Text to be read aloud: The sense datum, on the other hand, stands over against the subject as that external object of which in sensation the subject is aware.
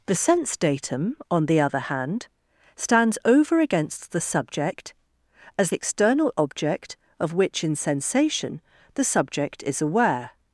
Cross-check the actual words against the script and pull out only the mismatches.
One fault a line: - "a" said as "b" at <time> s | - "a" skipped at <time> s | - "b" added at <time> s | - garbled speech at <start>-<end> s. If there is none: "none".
- "that" skipped at 5.7 s